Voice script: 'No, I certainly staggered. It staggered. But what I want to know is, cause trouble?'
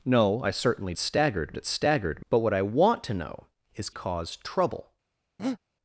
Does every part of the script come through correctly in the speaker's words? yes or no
yes